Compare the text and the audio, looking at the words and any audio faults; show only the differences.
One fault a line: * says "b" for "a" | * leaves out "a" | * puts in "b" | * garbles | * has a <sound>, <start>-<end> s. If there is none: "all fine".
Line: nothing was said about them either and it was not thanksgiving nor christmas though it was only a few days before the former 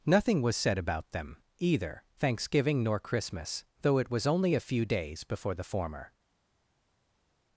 * leaves out "and it was not"